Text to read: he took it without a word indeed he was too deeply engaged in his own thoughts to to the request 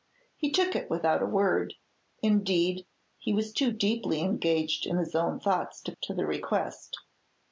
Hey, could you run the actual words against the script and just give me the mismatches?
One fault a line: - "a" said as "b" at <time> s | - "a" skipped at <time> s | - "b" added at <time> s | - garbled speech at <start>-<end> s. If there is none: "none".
none